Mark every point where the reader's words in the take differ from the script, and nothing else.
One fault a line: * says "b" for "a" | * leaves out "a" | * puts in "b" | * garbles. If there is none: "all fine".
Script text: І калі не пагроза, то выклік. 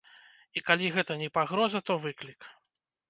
* puts in "гэта"